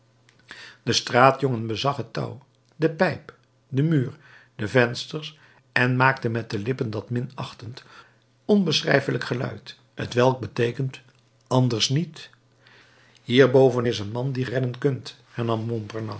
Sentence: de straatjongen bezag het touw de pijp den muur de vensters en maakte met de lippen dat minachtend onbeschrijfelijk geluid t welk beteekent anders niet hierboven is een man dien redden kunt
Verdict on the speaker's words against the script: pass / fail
pass